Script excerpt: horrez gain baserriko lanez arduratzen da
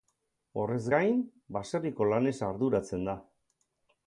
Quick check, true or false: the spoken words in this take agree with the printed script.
true